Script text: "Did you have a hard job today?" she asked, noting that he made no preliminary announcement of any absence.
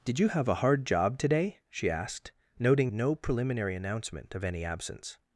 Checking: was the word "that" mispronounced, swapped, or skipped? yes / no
yes